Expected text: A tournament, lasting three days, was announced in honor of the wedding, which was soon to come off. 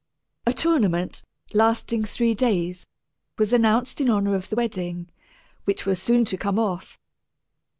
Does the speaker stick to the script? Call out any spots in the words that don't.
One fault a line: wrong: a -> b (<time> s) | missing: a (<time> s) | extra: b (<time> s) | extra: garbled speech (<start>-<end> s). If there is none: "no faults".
no faults